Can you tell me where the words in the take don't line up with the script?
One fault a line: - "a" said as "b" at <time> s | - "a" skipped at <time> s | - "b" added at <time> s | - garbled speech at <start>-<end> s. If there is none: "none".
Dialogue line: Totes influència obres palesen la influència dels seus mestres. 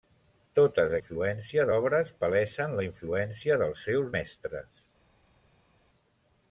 none